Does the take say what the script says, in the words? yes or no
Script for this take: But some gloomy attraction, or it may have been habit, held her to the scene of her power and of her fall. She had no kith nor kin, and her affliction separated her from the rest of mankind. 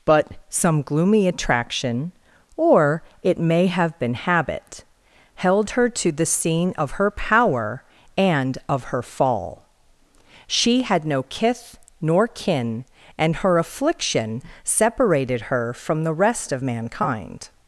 yes